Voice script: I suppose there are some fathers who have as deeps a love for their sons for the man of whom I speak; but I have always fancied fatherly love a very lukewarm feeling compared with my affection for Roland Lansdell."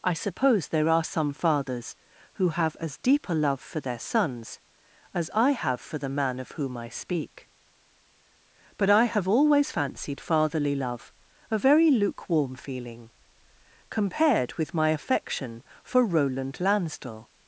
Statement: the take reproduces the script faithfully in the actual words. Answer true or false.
false